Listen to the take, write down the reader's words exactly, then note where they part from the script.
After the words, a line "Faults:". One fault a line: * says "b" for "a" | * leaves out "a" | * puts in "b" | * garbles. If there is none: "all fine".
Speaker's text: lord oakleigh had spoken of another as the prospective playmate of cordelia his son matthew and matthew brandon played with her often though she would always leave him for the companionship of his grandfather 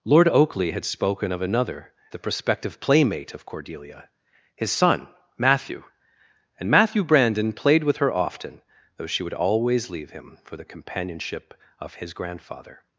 lord oakleigh had spoken of another the prospective playmate of cordelia his son matthew and matthew brandon played with her often though she would always leave him for the companionship of his grandfather
Faults:
* leaves out "as"